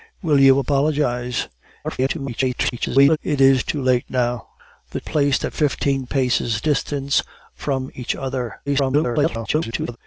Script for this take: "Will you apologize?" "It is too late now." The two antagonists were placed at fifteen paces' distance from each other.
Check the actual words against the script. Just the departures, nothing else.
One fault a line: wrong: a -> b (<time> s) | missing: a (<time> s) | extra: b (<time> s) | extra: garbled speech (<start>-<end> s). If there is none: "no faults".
extra: garbled speech (1.8-3.2 s)
missing: two antagonists were (5.0 s)
extra: garbled speech (8.7-10.0 s)